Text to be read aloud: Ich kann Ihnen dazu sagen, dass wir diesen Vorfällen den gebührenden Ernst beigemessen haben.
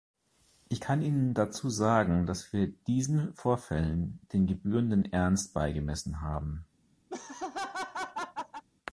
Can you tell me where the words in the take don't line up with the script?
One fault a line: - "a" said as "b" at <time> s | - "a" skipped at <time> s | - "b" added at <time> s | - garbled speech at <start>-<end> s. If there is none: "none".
none